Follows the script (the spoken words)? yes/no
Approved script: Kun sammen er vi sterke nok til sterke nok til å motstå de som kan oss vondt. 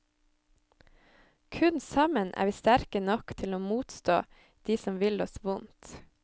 no